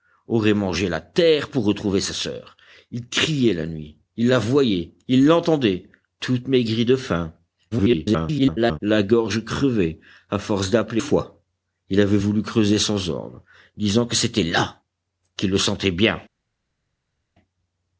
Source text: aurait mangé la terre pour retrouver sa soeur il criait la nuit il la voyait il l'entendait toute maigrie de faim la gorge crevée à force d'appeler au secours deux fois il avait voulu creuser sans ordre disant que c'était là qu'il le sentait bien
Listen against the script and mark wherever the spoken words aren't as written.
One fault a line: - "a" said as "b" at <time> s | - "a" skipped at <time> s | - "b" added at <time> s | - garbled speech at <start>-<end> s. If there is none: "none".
- garbled speech at 7.7-8.8 s
- "au secours deux" skipped at 11.0 s